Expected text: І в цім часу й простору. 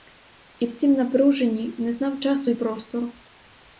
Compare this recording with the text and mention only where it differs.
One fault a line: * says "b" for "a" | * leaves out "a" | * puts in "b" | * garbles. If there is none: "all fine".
* puts in "напруженні не знав"